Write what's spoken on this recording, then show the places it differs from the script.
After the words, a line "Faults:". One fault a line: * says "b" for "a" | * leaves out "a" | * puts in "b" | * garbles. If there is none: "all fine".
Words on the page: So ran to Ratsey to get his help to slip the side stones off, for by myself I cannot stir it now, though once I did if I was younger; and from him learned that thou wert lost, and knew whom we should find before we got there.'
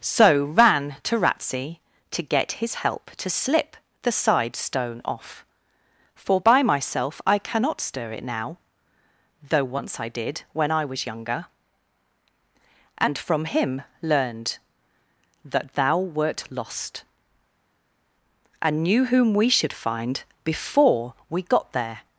So ran to Ratsey to get his help to slip the side stone off, for by myself I cannot stir it now, though once I did when I was younger; and from him learned that thou wert lost, and knew whom we should find before we got there.'
Faults:
* says "stone" for "stones"
* says "when" for "if"